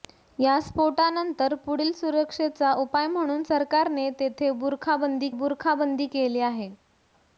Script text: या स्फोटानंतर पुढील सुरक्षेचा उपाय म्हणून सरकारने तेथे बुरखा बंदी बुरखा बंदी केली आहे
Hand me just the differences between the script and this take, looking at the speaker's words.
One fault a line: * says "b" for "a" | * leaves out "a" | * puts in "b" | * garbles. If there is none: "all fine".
all fine